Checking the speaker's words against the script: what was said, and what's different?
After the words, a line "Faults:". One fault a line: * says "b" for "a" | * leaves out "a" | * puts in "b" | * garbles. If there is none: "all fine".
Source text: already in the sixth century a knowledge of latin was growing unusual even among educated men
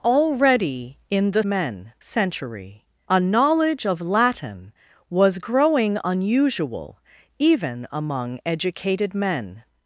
already in the men century a knowledge of latin was growing unusual even among educated men
Faults:
* says "men" for "sixth"